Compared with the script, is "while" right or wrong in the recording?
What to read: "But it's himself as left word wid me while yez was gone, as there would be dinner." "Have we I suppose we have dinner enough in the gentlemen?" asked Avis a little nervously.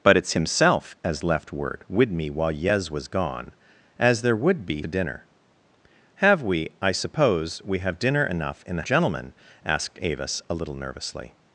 right